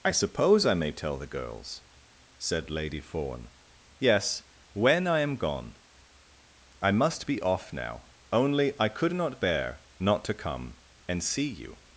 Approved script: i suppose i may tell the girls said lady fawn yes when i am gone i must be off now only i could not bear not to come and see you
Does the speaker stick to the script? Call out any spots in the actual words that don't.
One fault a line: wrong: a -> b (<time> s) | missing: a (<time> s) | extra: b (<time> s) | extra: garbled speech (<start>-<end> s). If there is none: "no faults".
no faults